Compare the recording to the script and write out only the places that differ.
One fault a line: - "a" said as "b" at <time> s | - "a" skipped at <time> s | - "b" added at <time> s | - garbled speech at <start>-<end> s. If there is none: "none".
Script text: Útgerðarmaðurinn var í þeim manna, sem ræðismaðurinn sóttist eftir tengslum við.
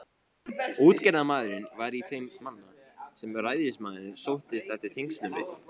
none